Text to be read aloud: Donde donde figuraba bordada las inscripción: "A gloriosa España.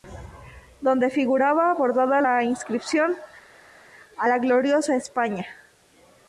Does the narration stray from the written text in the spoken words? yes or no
yes